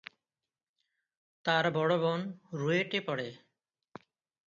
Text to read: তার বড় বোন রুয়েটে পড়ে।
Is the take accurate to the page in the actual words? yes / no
yes